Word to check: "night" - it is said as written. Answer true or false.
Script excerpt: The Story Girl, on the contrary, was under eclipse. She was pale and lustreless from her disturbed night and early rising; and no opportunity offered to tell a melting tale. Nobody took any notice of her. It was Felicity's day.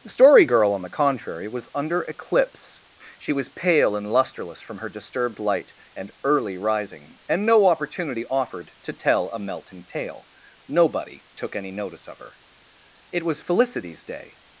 false